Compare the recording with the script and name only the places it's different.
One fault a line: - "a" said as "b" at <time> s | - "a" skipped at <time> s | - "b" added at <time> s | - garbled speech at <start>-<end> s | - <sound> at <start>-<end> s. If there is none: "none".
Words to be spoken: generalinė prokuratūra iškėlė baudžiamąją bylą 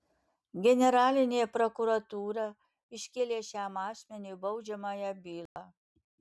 - "šiam asmeniui" added at 3.5 s
- dropout at 5.5-5.6 s